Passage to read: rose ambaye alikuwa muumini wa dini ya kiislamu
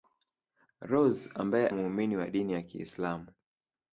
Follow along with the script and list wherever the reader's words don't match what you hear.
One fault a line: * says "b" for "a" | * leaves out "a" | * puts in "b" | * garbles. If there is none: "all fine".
* leaves out "alikuwa"